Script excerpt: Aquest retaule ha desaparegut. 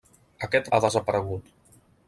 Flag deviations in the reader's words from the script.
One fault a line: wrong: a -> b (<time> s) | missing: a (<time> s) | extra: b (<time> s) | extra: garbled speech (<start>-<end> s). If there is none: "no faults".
missing: retaule (0.7 s)